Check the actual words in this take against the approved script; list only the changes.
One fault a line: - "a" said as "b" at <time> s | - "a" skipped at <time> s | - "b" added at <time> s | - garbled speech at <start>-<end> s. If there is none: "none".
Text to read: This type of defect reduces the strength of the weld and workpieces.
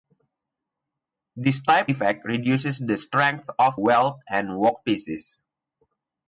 - "of" skipped at 1.9 s
- "the" skipped at 3.8 s